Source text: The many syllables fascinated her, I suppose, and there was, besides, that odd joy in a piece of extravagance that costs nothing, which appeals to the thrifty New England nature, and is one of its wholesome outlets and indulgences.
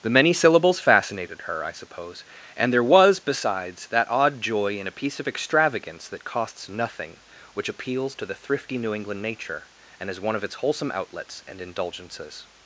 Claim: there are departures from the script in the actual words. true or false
false